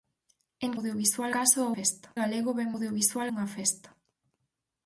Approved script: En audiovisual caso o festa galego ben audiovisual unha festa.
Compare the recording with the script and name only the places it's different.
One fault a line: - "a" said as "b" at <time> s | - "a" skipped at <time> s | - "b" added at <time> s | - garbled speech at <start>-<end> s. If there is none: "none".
none